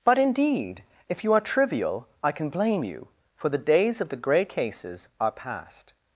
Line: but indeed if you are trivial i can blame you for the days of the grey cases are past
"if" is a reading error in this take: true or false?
false